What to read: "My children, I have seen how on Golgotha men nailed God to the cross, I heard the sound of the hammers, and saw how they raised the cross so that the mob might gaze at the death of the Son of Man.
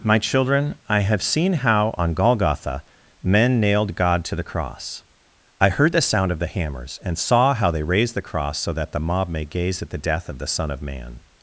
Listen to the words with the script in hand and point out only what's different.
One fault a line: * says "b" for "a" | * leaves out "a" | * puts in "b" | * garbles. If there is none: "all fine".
* says "may" for "might"